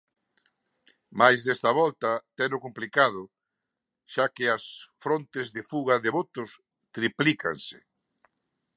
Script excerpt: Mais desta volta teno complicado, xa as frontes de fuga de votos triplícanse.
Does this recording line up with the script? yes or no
no